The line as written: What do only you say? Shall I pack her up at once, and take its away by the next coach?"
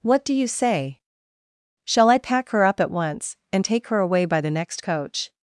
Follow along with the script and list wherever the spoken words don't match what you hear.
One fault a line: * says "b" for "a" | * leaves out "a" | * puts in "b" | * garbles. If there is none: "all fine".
* leaves out "only"
* says "her" for "its"